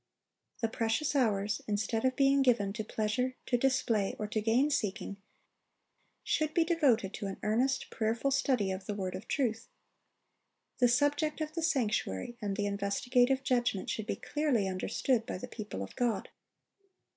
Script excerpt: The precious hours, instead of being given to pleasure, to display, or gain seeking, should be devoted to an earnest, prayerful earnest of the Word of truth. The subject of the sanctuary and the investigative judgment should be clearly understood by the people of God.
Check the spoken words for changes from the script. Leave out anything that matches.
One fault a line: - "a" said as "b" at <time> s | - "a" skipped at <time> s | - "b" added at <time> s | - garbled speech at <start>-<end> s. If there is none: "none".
- "to" added at 4.3 s
- "earnest" said as "study" at 8.3 s